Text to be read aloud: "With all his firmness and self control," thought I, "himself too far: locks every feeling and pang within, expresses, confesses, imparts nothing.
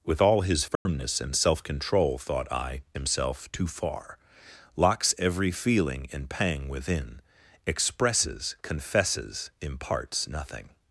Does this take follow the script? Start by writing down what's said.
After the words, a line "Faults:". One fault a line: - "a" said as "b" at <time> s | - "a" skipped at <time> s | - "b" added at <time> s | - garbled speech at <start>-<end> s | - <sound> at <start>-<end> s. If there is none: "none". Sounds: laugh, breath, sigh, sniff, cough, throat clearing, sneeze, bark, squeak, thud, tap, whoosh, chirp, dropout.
"With all his firmness and self control," thought I, "himself too far: locks every feeling and pang within, expresses, confesses, imparts nothing.
Faults:
- dropout at 0.8-0.9 s